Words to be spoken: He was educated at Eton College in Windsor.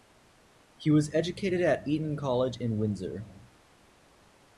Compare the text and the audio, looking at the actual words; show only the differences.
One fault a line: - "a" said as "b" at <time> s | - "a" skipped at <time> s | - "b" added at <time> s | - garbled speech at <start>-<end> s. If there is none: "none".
none